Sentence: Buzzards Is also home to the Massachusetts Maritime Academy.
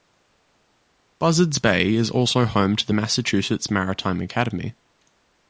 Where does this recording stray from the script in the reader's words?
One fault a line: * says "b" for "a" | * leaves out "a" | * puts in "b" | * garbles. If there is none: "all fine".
* puts in "Bay"